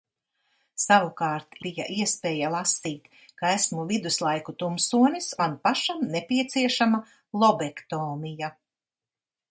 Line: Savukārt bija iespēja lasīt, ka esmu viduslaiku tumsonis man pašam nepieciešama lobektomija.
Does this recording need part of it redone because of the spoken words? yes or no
no